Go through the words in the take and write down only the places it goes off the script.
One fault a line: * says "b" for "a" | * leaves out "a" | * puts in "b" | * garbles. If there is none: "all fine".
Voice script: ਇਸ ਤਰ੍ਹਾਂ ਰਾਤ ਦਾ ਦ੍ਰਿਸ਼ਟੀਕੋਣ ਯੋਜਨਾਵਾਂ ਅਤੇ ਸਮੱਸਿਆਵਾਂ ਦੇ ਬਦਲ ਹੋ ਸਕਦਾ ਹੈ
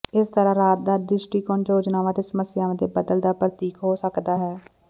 * puts in "ਦਾ ਪ੍ਰਤੀਕ"